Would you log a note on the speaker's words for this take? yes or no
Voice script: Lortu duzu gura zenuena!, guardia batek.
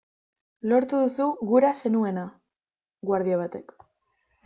no